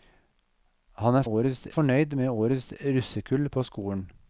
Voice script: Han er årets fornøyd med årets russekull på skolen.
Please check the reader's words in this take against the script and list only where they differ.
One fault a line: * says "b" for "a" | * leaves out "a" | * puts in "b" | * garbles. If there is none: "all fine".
all fine